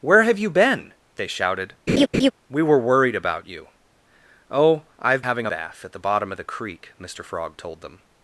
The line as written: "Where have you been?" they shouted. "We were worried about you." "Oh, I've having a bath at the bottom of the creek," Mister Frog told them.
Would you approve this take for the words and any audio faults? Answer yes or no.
no